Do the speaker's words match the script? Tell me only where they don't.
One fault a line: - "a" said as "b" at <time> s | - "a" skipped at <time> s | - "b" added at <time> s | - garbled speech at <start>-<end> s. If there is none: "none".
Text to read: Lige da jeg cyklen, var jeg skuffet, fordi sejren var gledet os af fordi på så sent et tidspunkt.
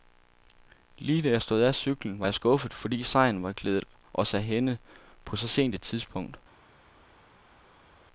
- "stod af" added at 1.4 s
- "fordi" said as "hænde" at 4.4 s